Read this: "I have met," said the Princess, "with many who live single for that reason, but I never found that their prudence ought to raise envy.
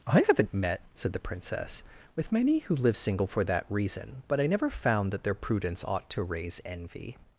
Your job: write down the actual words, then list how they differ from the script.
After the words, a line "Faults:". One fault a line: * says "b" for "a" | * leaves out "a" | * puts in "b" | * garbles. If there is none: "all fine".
"I haven't met," said the Princess, "with many who live single for that reason, but I never found that their prudence ought to raise envy.
Faults:
* says "haven't" for "have"